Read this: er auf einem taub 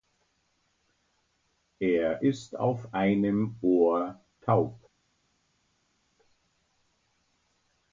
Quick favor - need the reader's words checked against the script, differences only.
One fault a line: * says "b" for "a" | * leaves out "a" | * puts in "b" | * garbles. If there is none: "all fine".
* puts in "ist"
* puts in "ohr"